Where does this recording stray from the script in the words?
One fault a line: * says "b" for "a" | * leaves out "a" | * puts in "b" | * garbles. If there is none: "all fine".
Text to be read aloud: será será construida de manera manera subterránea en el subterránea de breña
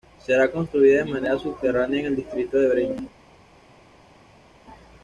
* leaves out "será"
* leaves out "manera"
* says "distrito" for "subterránea"